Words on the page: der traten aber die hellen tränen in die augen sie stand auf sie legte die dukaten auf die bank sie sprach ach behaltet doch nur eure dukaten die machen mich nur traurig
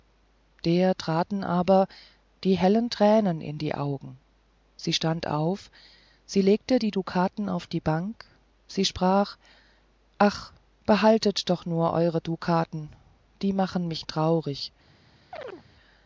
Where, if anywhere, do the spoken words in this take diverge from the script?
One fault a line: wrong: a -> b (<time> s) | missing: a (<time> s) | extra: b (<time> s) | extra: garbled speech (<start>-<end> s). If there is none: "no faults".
missing: nur (14.1 s)